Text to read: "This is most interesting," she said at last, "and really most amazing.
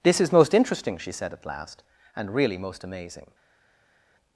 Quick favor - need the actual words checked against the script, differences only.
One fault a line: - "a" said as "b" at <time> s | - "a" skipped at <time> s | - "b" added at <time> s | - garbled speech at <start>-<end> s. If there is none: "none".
none